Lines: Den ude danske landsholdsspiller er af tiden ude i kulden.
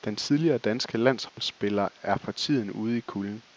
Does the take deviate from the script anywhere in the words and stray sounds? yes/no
yes